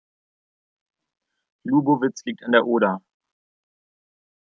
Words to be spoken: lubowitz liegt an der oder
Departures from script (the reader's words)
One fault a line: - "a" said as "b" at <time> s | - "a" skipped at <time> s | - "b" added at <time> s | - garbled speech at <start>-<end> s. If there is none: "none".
none